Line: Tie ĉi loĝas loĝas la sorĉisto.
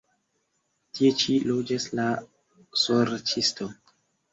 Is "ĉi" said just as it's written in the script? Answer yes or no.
yes